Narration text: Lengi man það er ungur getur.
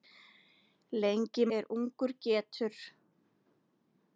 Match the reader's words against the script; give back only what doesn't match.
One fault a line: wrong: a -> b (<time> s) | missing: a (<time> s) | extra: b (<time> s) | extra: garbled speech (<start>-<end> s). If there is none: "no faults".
missing: man það (1.4 s)